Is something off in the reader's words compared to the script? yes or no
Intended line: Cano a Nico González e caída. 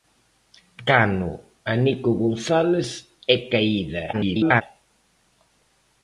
yes